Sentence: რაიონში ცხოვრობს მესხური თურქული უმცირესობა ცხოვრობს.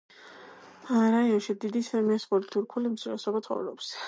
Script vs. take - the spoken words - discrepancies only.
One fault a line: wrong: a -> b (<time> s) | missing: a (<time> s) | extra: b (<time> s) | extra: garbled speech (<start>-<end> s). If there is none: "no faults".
wrong: ცხოვრობს -> დიდი (1.6 s)